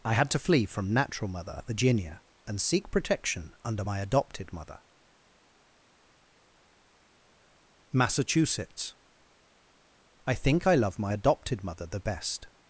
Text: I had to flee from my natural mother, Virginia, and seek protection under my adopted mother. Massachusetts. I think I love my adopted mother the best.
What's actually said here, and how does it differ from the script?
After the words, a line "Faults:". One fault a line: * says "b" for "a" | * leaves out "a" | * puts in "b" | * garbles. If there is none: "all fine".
I had to flee from natural mother, Virginia, and seek protection under my adopted mother. Massachusetts. I think I love my adopted mother the best.
Faults:
* leaves out "my"